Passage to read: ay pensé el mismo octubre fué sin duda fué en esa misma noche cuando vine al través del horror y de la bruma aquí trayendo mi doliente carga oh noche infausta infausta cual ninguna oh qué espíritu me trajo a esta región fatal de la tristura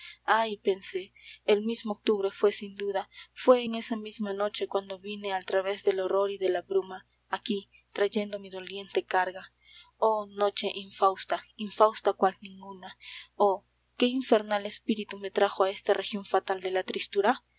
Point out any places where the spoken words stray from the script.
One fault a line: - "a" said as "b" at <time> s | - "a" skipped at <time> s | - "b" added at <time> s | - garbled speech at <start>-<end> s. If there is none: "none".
- "infernal" added at 14.0 s